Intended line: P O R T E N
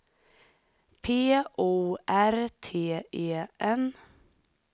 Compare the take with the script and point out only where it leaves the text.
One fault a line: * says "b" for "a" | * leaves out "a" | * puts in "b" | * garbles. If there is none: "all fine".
all fine